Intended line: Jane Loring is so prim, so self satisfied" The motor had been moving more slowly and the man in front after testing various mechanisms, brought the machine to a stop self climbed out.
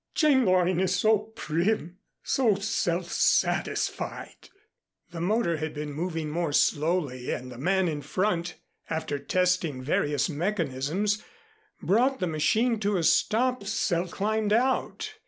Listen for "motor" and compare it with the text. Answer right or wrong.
right